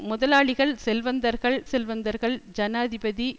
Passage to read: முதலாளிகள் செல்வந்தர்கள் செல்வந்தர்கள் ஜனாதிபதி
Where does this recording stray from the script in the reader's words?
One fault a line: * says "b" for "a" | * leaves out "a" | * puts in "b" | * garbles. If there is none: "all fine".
all fine